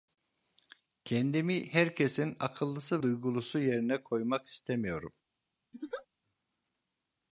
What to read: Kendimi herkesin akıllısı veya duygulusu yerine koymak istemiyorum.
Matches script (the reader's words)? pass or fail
fail